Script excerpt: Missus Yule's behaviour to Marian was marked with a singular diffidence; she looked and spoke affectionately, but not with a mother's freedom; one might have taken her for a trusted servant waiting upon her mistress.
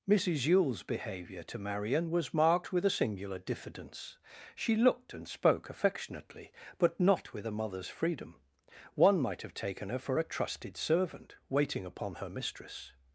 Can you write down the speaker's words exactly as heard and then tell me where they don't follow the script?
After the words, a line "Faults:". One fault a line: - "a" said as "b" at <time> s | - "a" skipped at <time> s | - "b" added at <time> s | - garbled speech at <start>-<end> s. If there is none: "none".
Missus Yule's behaviour to Marian was marked with a singular diffidence; she looked and spoke affectionately, but not with a mother's freedom; one might have taken her for a trusted servant waiting upon her mistress.
Faults:
none